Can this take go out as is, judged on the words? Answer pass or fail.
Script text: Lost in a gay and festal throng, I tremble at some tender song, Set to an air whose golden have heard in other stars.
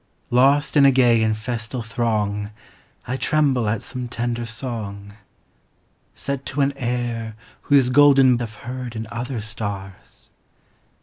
pass